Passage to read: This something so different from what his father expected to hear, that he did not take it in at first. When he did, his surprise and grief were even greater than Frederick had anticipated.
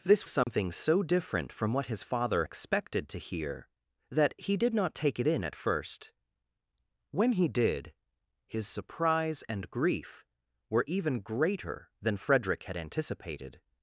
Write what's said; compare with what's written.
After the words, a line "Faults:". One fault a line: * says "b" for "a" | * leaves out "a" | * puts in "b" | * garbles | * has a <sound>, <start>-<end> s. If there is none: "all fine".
This something so different from what his father expected to hear, that he did not take it in at first. When he did, his surprise and grief were even greater than Frederick had anticipated.
Faults:
* has a dropout, 0.4-0.5 s